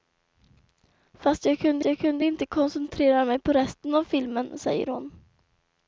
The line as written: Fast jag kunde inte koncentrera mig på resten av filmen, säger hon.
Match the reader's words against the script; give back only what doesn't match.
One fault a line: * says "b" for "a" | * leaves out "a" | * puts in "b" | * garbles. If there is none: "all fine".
* puts in "jag kunde"